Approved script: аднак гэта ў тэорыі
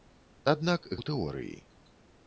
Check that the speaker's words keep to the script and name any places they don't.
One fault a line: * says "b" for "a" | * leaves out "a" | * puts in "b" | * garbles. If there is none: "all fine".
* leaves out "гэта"